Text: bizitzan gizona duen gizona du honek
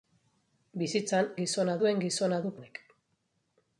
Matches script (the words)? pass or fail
pass